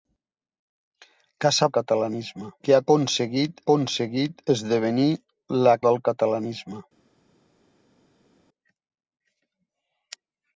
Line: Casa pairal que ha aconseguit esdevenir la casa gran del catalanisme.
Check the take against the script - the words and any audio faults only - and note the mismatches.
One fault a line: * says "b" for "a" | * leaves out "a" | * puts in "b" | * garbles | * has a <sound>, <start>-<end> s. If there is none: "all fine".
* says "catalanisme" for "pairal"
* puts in "aconseguit"
* leaves out "casa gran"